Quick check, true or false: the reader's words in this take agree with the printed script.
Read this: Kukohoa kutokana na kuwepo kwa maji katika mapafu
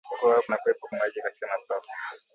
false